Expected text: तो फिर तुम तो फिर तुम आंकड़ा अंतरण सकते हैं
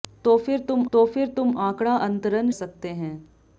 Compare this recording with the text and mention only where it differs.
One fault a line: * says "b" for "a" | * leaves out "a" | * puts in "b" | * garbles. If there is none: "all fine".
all fine